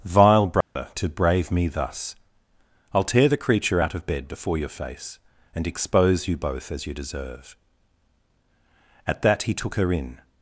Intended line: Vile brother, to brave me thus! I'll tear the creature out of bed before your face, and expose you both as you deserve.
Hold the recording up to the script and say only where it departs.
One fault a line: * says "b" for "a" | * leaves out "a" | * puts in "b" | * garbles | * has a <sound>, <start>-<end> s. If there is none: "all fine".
* has a dropout, 0.6-0.8 s
* puts in "At that he took her in"